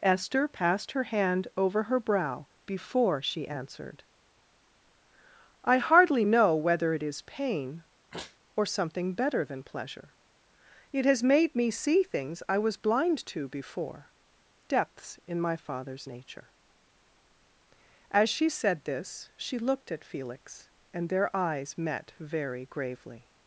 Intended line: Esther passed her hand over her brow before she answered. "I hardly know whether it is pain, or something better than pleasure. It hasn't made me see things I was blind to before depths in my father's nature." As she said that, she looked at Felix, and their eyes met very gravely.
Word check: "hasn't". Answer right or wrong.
wrong